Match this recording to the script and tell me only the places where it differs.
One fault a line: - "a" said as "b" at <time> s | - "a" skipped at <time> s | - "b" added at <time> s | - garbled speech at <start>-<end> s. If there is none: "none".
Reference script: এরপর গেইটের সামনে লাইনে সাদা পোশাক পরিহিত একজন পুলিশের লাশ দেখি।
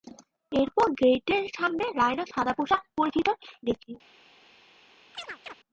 - "একজন পুলিশের লাশ" skipped at 3.3 s